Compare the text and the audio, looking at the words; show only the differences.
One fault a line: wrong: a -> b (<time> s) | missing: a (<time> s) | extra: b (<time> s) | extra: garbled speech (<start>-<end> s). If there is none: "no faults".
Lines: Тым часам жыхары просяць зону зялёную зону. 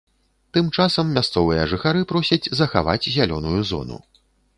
extra: мясцовыя (1.2 s)
wrong: зону -> захаваць (2.6 s)